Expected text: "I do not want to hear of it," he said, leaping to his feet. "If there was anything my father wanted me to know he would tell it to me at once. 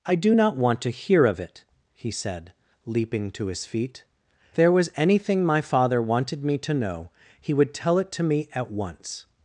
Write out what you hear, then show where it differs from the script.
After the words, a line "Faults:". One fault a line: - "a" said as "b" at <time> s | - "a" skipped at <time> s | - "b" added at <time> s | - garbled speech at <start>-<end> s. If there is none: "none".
"I do not want to hear of it," he said, leaping to his feet. "There was anything my father wanted me to know he would tell it to me at once.
Faults:
- "If" skipped at 4.0 s